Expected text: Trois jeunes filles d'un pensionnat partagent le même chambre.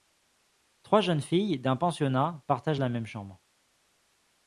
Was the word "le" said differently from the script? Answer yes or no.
yes